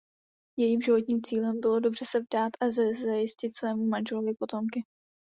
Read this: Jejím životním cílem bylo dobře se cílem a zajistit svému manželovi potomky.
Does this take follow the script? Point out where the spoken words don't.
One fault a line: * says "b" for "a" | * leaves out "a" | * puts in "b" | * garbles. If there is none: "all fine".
* says "vdát" for "cílem"